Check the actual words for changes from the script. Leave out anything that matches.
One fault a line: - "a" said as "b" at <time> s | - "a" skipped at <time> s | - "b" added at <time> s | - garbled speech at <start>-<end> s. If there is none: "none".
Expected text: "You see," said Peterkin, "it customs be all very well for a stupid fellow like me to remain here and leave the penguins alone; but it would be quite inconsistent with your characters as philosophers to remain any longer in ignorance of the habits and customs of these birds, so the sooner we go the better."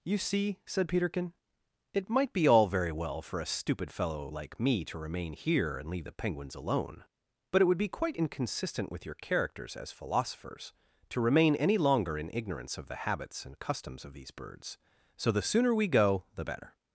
- "customs" said as "might" at 2.1 s